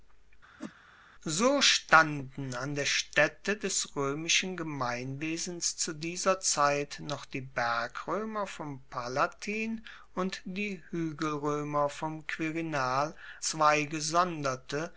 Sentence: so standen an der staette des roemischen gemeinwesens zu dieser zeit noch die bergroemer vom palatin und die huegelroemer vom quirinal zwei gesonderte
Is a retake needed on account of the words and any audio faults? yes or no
yes